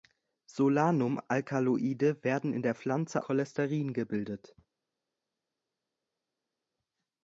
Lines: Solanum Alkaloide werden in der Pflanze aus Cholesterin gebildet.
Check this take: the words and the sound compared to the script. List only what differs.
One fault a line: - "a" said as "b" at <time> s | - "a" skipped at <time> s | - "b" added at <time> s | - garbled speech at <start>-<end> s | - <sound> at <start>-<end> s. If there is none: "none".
- "aus" skipped at 3.2 s